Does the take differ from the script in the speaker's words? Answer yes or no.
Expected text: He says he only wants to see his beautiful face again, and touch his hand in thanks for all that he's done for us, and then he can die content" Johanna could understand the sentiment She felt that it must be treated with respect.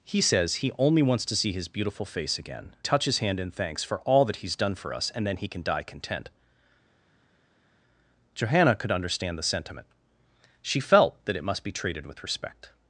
yes